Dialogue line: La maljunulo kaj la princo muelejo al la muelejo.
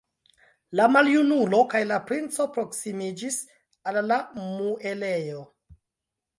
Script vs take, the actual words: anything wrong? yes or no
yes